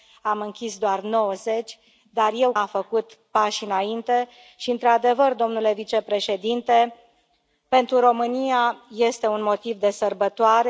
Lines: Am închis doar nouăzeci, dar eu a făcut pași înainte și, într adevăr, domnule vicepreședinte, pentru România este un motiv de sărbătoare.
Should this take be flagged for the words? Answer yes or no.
no